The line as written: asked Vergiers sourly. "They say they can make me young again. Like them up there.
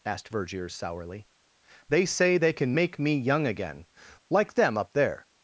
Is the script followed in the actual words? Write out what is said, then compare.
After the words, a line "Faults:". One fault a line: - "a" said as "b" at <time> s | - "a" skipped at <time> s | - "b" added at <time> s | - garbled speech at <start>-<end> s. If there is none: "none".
asked Vergiers sourly. "They say they can make me young again. Like them up there.
Faults:
none